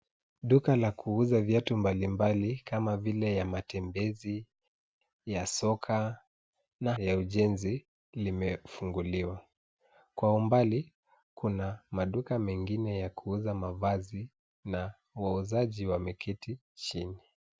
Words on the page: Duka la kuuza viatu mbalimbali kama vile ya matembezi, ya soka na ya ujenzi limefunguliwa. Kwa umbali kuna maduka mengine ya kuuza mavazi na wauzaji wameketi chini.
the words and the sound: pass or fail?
pass